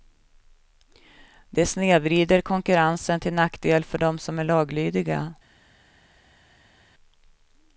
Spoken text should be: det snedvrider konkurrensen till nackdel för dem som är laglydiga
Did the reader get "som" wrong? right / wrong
right